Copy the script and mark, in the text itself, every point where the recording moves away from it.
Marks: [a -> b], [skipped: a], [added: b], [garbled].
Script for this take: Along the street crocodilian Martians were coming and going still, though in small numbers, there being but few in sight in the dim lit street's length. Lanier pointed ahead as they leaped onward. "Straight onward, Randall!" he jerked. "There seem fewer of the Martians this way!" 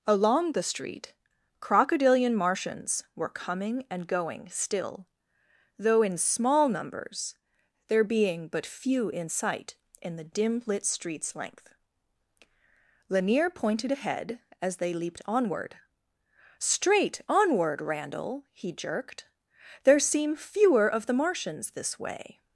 Along the street crocodilian Martians were coming and going still, though in small numbers, there being but few in sight in the dim lit street's length. Lanier pointed ahead as they leaped onward. "Straight onward, Randall!" he jerked. "There seem fewer of the Martians this way!"